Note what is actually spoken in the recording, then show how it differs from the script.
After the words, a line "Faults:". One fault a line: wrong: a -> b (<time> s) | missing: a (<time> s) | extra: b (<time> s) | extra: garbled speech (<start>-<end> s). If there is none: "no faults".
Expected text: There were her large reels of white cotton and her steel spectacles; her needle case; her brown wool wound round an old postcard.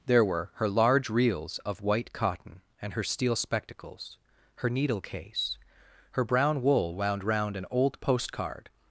There were her large reels of white cotton and her steel spectacles; her needle case; her brown wool wound round an old postcard.
Faults:
no faults